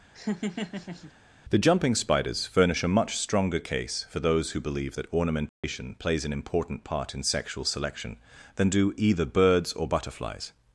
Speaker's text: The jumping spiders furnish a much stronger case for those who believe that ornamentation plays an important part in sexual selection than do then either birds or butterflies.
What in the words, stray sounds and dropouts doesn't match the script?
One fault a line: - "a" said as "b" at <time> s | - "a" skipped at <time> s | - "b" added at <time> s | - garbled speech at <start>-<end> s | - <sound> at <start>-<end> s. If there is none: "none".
- laugh at 0.1-1.1 s
- dropout at 5.5-5.6 s
- "then" skipped at 9.0 s